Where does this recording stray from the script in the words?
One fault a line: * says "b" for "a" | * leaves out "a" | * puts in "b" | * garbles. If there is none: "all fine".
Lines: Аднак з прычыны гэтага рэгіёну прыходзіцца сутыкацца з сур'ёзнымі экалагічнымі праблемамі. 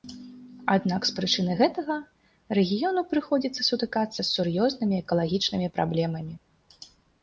all fine